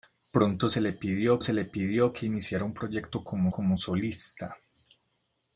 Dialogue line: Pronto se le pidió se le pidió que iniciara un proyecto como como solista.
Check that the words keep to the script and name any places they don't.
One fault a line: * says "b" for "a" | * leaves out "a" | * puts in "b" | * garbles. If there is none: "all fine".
all fine